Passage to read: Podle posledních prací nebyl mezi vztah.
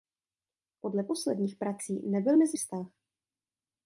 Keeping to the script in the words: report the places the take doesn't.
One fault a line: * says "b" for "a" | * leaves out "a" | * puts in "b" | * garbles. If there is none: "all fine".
all fine